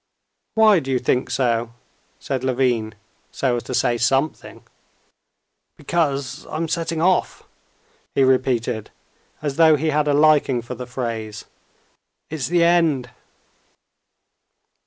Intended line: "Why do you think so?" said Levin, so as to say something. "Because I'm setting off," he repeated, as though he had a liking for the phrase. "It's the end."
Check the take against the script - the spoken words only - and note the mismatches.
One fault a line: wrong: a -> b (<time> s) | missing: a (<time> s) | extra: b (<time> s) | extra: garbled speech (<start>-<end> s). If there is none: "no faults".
no faults